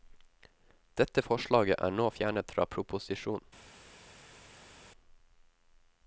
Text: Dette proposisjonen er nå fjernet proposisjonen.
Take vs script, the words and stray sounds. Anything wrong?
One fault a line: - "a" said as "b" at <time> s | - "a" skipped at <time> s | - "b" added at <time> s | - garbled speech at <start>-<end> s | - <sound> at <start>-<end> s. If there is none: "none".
- "proposisjonen" said as "forslaget" at 1.2 s
- "fra" added at 2.6 s